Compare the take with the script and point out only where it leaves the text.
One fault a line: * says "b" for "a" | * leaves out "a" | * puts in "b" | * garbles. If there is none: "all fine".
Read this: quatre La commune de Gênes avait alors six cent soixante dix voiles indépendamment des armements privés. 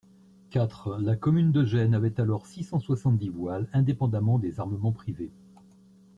all fine